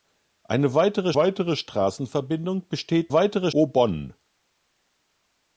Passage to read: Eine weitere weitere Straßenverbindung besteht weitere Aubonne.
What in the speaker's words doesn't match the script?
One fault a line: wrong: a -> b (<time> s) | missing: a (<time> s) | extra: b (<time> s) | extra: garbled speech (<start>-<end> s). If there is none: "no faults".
no faults